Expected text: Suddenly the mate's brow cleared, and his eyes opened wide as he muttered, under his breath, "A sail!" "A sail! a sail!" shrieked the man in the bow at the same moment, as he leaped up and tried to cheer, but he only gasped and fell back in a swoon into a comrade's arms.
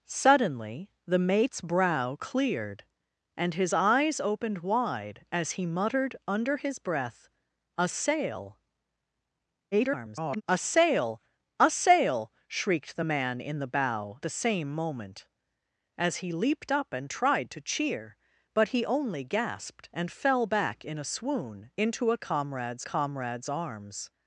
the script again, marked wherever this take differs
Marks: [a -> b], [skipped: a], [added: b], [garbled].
Suddenly the mate's brow cleared, and his eyes opened wide as he muttered, under his breath, "A sail!" [garbled] "A sail! a sail!" shrieked the man in the bow [skipped: at] the same moment, as he leaped up and tried to cheer, but he only gasped and fell back in a swoon into a comrade's [added: comrade's] arms.